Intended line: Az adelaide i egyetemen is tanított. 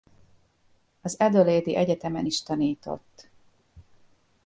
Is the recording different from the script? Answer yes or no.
no